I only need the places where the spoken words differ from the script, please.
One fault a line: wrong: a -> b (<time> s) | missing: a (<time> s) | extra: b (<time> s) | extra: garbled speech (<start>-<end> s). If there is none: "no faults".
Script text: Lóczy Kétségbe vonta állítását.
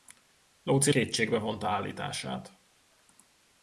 no faults